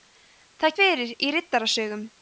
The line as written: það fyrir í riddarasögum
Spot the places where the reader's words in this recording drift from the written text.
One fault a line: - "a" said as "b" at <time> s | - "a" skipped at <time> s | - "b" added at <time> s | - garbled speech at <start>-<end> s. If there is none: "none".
none